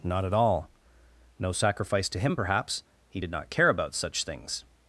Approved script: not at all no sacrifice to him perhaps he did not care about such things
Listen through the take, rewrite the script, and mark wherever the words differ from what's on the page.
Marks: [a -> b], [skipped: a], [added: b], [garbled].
not at all no sacrifice to him perhaps he did not care about such things